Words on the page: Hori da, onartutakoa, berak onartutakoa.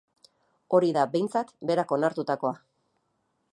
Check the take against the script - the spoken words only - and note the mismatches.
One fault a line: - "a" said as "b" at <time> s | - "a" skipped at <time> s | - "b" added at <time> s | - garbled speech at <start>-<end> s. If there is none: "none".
- "onartutakoa" said as "behintzat" at 1.1 s